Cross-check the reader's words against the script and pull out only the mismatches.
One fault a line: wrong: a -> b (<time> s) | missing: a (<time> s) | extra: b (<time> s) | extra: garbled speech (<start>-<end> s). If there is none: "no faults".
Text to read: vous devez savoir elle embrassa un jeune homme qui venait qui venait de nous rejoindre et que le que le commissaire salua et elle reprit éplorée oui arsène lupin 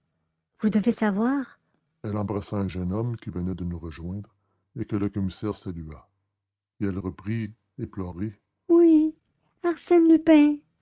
missing: qui venait (3.5 s)
missing: que le (5.1 s)